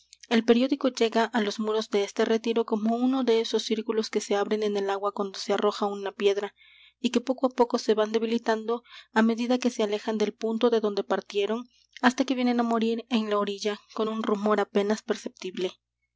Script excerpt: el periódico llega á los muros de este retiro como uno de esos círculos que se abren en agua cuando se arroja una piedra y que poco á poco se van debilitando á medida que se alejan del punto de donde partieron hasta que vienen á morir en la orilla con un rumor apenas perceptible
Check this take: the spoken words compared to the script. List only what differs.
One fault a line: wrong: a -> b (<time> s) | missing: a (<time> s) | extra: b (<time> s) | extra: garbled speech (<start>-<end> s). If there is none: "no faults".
extra: el (4.8 s)